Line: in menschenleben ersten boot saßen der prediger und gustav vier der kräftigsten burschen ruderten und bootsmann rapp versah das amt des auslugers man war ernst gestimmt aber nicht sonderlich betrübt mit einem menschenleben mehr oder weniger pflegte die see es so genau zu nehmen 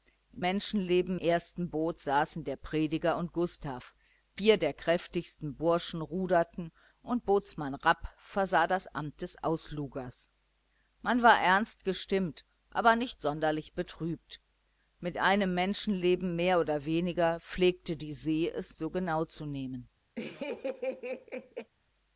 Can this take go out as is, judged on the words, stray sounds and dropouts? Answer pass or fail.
fail